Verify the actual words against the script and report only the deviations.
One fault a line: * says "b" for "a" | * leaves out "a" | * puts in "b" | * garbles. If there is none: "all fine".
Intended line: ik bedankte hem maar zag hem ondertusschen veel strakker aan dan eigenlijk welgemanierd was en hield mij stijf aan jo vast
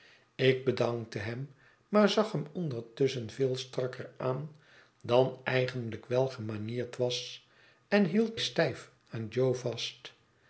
* leaves out "mij"